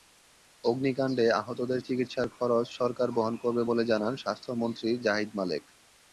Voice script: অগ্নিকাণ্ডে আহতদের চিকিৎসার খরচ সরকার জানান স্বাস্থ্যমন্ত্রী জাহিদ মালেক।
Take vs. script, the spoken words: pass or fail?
fail